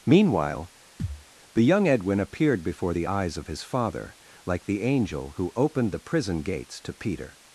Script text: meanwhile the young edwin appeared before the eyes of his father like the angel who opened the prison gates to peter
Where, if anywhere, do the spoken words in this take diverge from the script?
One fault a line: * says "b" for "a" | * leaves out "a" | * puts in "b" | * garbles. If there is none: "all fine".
all fine